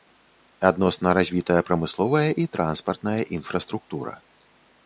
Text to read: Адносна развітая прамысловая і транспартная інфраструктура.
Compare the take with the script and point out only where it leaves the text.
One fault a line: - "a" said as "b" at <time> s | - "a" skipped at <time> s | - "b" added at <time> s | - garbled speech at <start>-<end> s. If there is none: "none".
none